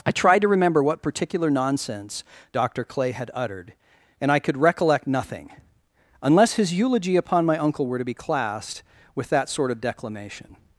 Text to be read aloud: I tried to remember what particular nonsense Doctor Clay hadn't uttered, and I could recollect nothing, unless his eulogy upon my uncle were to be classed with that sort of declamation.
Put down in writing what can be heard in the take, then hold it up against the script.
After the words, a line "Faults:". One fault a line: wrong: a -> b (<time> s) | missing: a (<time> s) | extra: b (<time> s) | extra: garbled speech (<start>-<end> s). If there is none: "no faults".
I tried to remember what particular nonsense Doctor Clay had uttered, and I could recollect nothing, unless his eulogy upon my uncle were to be classed with that sort of declamation.
Faults:
wrong: hadn't -> had (3.1 s)